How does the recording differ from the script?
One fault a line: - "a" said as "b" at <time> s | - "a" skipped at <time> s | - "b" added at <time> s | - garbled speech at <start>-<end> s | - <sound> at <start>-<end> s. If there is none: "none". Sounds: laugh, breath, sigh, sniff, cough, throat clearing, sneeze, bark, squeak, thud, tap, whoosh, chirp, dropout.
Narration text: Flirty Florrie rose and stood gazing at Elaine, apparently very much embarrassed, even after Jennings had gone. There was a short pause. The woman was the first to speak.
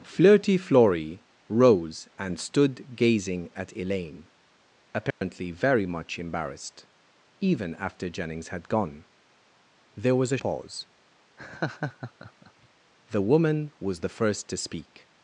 - dropout at 5.1-5.2 s
- "short" skipped at 10.4 s
- laugh at 11.4-12.7 s